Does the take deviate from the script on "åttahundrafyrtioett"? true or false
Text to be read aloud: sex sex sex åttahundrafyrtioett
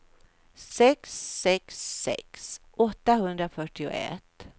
false